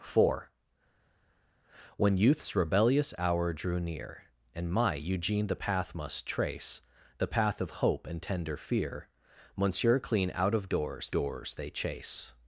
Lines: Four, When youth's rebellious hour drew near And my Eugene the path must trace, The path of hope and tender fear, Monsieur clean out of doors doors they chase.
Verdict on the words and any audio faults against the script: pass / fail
pass